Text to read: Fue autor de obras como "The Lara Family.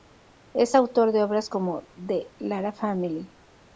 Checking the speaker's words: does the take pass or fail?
fail